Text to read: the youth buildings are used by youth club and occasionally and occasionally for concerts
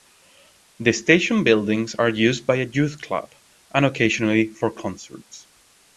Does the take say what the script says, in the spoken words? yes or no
no